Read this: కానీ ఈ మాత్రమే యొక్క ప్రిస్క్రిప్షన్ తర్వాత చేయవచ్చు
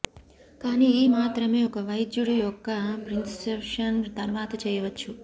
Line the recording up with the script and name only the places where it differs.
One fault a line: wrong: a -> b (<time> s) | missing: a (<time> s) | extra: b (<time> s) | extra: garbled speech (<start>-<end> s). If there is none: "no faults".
extra: ఒక వైద్యుడు (1.6 s)